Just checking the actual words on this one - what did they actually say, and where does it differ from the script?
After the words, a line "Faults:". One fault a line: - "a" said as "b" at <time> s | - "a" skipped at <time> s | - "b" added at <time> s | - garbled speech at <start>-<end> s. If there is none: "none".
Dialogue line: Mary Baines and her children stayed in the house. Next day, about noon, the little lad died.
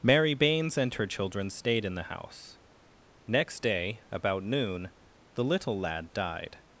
Mary Baines and her children stayed in the house. Next day, about noon, the little lad died.
Faults:
none